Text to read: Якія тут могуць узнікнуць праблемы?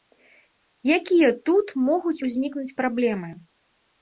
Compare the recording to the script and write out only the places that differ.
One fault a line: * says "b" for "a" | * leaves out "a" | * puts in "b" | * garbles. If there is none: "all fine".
all fine